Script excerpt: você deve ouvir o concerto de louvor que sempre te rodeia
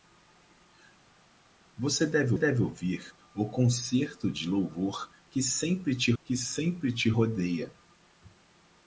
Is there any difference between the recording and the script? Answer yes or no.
yes